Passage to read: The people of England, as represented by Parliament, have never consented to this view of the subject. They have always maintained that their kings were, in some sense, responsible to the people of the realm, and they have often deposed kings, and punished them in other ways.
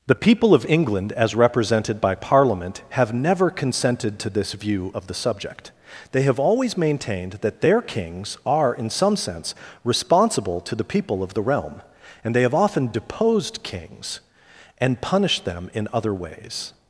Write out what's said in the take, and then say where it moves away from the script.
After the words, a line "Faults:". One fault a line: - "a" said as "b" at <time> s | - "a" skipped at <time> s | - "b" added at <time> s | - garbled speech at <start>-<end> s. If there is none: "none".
The people of England, as represented by Parliament, have never consented to this view of the subject. They have always maintained that their kings are, in some sense, responsible to the people of the realm, and they have often deposed kings, and punished them in other ways.
Faults:
- "were" said as "are" at 8.5 s